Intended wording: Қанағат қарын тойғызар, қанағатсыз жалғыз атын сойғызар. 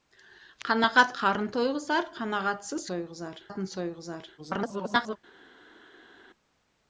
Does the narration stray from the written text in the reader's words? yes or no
yes